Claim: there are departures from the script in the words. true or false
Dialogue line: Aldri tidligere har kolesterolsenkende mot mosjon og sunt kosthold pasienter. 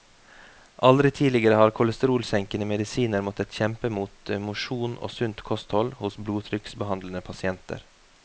true